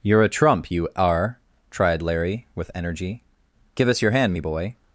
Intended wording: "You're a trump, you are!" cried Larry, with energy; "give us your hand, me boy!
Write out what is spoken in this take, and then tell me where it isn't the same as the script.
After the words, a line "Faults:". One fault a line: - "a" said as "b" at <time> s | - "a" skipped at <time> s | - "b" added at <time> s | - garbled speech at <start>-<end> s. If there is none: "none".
"You're a trump, you are!" tried Larry, with energy; "give us your hand, me boy!
Faults:
- "cried" said as "tried" at 1.7 s